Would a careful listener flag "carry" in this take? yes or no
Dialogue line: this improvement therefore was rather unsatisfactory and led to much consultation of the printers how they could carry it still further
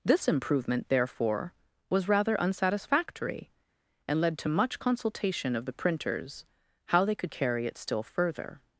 no